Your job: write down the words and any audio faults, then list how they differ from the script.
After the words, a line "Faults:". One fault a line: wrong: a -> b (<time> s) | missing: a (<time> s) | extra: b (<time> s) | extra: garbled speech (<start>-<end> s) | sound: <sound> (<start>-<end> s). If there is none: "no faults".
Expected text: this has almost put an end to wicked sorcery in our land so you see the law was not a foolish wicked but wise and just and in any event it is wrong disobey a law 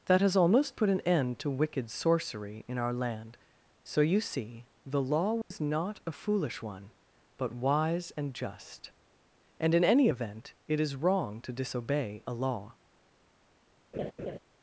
that has almost put an end to wicked sorcery in our land so you see the law was not a foolish one but wise and just and in any event it is wrong to disobey a law
Faults:
wrong: this -> that (0.1 s)
sound: dropout (5.4-5.5 s)
wrong: wicked -> one (6.6 s)
extra: to (11.4 s)
sound: laugh (13.9-14.4 s)